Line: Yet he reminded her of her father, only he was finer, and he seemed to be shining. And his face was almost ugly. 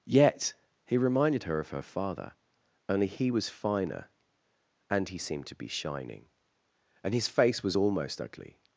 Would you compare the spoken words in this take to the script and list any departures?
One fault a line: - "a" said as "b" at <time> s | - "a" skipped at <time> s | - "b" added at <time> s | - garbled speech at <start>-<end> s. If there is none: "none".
none